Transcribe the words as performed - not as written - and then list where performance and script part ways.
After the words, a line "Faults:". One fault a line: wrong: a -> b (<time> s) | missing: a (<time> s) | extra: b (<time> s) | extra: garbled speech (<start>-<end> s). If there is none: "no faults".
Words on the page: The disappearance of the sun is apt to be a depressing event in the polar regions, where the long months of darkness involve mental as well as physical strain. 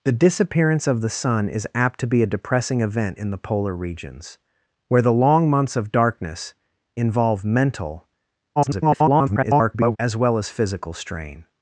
The disappearance of the sun is apt to be a depressing event in the polar regions, where the long months of darkness involve mental [garbled] as well as physical strain.
Faults:
extra: garbled speech (8.6-10.0 s)